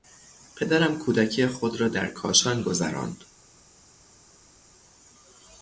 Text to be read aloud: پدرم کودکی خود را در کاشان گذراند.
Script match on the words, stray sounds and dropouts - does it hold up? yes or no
yes